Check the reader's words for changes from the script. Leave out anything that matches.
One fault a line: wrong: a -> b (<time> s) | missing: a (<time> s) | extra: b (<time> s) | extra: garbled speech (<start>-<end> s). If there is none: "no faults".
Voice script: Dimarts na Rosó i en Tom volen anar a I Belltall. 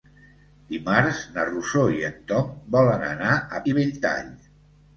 no faults